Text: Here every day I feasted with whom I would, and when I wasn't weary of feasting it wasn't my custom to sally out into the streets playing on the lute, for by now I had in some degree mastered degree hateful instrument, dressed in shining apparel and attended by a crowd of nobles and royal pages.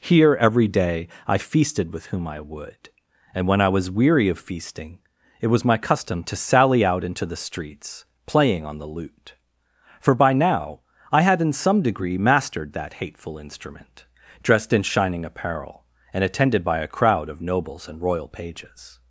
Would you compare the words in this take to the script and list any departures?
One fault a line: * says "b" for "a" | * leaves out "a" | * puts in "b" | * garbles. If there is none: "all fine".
* says "was" for "wasn't"
* says "was" for "wasn't"
* says "that" for "degree"